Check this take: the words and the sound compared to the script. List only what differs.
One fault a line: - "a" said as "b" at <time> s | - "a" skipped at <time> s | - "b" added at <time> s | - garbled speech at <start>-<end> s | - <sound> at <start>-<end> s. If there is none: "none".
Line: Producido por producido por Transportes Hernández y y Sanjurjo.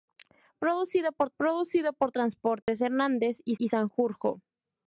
- dropout at 2.6-2.7 s